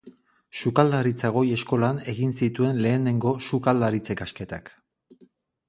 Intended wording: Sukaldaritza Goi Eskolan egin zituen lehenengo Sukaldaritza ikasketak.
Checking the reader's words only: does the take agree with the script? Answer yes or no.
yes